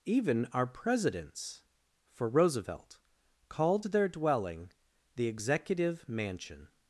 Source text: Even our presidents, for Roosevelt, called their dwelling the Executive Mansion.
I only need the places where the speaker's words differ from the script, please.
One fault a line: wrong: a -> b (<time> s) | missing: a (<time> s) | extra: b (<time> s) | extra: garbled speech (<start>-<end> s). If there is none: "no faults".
no faults